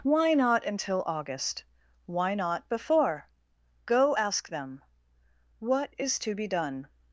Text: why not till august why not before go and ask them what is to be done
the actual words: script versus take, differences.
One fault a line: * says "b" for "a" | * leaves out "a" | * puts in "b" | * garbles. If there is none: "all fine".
* says "until" for "till"
* leaves out "and"